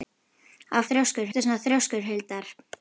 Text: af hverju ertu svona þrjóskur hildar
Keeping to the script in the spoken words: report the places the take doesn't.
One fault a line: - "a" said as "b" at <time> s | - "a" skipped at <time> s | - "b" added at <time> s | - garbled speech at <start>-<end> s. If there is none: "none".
- "hverju" said as "þrjóskur" at 0.9 s